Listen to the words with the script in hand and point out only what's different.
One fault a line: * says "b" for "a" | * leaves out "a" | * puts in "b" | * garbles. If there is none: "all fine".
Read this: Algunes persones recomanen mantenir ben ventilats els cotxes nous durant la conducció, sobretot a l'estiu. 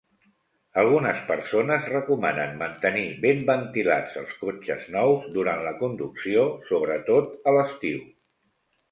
all fine